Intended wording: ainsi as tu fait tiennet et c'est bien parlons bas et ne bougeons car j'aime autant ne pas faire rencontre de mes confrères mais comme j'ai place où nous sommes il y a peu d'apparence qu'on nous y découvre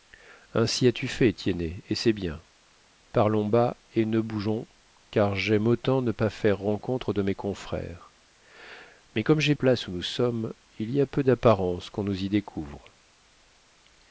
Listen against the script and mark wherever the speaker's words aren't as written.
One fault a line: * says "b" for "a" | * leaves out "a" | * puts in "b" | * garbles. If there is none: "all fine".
all fine